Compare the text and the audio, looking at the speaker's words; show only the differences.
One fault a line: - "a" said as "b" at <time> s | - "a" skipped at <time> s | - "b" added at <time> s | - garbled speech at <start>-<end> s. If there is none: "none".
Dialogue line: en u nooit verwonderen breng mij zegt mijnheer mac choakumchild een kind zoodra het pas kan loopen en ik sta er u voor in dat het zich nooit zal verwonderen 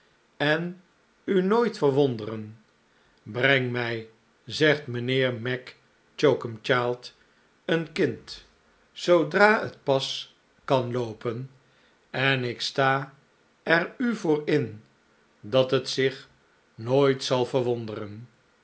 none